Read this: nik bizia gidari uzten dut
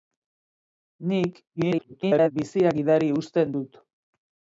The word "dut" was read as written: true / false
true